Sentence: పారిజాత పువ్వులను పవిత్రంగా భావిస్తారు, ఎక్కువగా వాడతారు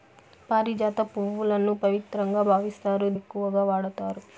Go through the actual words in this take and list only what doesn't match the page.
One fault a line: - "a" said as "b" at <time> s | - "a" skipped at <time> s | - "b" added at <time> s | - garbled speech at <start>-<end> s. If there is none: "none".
none